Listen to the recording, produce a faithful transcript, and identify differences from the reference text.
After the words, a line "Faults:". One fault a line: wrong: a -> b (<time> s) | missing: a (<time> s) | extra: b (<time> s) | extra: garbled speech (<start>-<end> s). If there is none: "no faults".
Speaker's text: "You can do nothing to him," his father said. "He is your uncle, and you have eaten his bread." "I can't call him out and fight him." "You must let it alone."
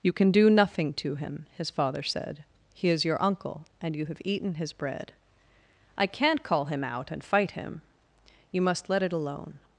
"You can do nothing to him," his father said. "He is your uncle, and you have eaten his bread." "I can't call him out and fight him." "You must let it alone."
Faults:
no faults